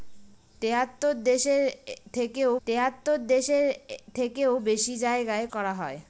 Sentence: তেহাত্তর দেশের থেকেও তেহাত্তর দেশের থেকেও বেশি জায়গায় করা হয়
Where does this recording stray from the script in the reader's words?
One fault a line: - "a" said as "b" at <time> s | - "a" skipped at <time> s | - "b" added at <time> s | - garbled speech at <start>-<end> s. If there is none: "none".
none